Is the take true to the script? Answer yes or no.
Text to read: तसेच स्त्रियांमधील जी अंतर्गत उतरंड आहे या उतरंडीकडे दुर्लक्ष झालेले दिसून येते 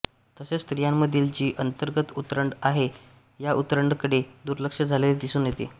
yes